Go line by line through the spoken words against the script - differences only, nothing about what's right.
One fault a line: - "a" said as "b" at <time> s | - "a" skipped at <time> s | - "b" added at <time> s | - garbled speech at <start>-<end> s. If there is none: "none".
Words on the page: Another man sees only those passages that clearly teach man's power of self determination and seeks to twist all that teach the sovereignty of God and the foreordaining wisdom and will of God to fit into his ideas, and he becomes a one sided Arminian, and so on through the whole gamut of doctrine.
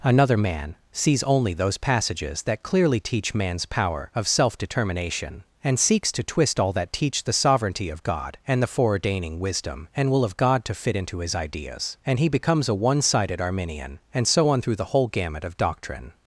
none